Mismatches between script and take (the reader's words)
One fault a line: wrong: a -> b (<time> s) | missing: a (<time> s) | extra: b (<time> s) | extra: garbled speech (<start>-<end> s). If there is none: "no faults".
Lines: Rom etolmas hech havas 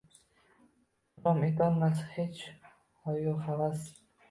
extra: hoyu (3.0 s)